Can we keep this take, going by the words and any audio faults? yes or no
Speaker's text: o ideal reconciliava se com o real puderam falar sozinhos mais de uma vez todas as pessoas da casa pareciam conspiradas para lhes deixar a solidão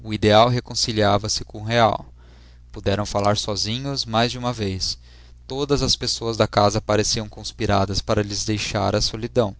yes